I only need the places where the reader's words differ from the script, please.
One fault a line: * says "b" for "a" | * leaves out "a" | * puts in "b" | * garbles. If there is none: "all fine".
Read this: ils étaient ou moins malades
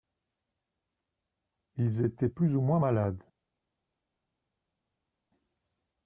* puts in "plus"